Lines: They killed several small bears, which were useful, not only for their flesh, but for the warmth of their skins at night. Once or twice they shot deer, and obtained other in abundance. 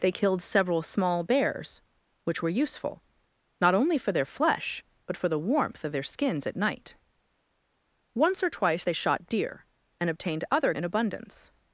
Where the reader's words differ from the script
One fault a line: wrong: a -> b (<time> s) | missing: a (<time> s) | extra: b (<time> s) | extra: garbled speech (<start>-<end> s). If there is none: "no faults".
no faults